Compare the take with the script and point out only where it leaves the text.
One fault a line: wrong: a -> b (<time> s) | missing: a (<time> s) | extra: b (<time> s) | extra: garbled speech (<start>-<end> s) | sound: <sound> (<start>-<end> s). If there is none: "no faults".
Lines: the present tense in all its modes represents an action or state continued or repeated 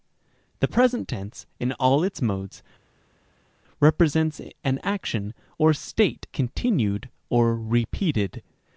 no faults